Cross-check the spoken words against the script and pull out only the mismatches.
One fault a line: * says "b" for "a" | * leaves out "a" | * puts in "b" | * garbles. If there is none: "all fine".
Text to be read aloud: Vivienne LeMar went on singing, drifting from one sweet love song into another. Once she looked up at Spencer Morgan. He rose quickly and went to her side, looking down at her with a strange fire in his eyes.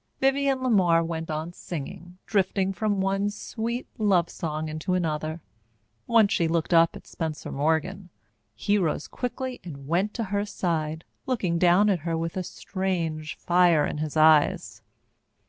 all fine